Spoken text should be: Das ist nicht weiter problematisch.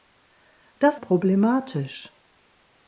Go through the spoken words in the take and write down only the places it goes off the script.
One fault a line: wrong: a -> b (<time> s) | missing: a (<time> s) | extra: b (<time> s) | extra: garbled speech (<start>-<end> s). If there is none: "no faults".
missing: ist nicht weiter (1.0 s)